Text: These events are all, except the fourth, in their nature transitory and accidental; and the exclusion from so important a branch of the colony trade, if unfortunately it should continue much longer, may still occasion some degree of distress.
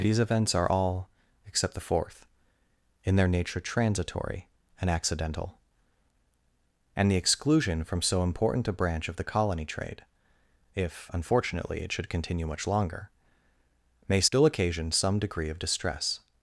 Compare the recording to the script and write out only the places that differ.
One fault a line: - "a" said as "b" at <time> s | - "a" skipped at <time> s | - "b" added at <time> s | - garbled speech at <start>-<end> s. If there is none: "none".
none